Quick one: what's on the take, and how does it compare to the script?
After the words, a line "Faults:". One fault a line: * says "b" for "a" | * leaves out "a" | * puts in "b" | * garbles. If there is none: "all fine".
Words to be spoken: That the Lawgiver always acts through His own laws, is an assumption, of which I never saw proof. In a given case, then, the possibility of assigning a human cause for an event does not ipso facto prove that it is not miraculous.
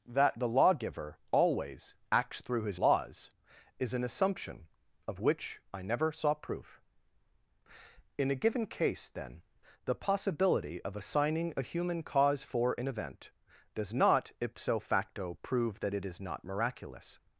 That the Lawgiver always acts through His laws, is an assumption, of which I never saw proof. In a given case, then, the possibility of assigning a human cause for an event does not ipso facto prove that it is not miraculous.
Faults:
* leaves out "own"